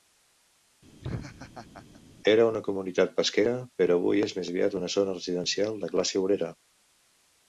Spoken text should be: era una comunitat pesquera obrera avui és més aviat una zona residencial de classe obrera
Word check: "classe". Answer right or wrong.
right